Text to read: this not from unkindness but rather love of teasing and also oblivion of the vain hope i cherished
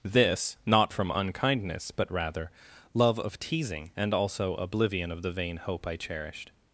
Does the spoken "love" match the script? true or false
true